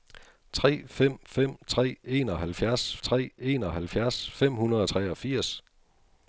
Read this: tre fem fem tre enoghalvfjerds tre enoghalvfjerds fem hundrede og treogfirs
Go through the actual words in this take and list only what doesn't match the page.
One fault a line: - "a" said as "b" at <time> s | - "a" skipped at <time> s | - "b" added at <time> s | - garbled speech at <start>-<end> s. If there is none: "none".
none